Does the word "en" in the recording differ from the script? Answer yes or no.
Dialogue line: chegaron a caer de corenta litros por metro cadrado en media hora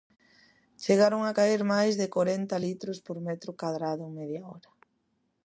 no